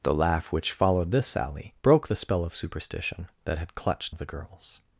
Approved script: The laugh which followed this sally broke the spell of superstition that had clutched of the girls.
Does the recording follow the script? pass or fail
pass